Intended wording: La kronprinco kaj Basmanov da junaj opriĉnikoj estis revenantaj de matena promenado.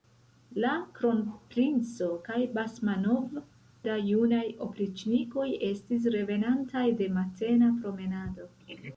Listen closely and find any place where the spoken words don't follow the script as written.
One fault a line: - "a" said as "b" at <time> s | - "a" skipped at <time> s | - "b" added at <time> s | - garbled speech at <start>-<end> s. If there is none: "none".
none